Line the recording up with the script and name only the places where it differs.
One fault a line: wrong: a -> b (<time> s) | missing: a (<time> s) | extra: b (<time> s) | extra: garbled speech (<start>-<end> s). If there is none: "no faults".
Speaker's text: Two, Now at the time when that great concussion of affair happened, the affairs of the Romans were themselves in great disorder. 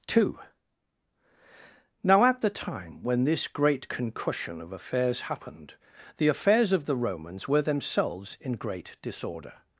wrong: that -> this (3.2 s)
wrong: affair -> affairs (4.7 s)